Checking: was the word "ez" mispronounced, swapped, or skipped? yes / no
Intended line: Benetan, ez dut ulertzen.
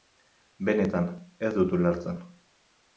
no